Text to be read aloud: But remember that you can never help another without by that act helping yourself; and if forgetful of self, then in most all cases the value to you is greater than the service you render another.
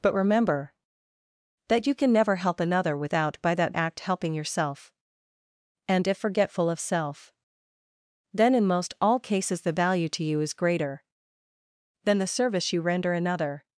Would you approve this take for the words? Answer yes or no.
yes